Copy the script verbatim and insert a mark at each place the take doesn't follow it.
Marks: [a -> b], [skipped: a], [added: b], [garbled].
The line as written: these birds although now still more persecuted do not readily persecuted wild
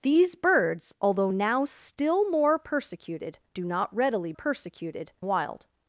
these birds although now still more persecuted do not readily persecuted wild